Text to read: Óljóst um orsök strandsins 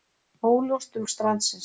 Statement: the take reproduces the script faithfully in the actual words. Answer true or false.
false